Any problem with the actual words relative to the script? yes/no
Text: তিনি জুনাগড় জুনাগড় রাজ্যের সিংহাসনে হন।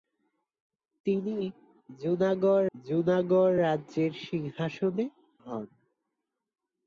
no